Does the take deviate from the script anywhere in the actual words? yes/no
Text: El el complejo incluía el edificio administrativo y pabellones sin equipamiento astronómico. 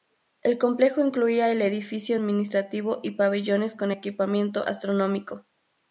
yes